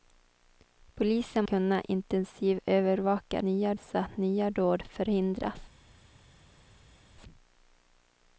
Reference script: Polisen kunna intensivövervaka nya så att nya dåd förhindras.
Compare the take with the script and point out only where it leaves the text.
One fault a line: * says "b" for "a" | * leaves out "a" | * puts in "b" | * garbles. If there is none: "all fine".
all fine